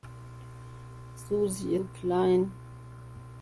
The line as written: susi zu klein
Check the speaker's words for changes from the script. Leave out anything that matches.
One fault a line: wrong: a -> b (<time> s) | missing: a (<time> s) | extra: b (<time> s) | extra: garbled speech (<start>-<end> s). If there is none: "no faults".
no faults